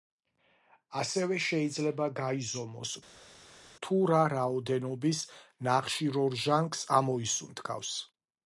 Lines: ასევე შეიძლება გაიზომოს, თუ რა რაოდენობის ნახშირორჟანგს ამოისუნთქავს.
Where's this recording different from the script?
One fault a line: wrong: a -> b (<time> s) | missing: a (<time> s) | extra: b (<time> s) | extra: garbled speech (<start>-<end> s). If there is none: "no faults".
no faults